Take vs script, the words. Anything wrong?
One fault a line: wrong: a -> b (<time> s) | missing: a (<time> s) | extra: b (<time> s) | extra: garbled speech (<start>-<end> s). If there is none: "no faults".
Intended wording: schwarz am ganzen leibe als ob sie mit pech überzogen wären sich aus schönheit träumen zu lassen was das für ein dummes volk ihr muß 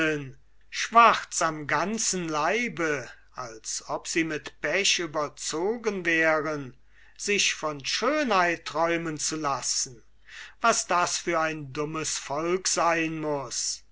wrong: aus -> von (7.5 s)
wrong: ihr -> sein (12.7 s)